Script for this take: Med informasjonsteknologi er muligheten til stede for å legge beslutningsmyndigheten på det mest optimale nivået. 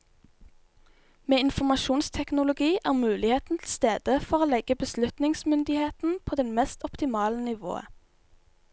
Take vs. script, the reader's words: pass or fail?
pass